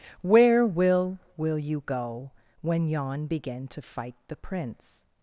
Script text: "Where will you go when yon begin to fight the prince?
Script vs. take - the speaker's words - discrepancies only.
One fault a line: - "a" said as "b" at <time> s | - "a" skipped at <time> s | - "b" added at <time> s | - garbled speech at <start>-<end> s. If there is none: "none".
- "will" added at 1.3 s